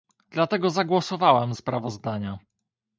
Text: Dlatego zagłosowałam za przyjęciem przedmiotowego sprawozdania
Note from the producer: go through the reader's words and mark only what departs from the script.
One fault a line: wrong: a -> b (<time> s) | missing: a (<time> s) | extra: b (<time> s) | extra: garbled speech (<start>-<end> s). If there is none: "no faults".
missing: za przyjęciem przedmiotowego (1.5 s)